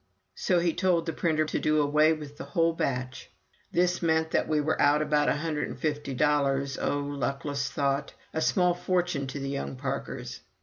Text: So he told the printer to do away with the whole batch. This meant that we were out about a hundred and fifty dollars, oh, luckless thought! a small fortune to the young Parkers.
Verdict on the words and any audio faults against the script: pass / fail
pass